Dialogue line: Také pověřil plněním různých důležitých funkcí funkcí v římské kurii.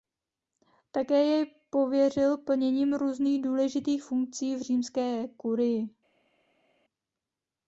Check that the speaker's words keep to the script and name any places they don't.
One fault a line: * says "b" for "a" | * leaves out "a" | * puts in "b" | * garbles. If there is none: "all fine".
* puts in "jej"
* leaves out "funkcí"